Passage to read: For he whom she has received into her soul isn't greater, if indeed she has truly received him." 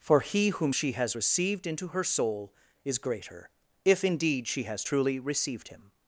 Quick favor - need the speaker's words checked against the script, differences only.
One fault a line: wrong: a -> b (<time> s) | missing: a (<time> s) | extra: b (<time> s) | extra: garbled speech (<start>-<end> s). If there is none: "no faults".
wrong: isn't -> is (2.8 s)